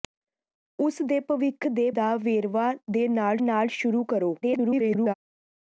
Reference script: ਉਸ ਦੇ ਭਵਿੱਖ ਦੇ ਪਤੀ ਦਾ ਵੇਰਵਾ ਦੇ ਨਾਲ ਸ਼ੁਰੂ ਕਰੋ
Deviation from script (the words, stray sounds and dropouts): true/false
true